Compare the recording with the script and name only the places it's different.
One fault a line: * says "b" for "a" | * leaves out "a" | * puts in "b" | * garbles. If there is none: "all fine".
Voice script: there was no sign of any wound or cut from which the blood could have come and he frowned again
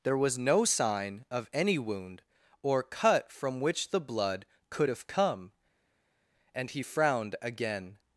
all fine